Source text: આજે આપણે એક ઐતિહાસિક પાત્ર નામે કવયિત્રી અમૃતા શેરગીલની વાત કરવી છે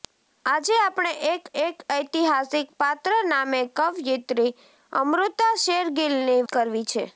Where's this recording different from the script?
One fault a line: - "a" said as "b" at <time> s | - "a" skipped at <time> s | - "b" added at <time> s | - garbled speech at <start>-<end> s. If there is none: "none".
- "એક" added at 1.6 s
- "વાત" skipped at 6.4 s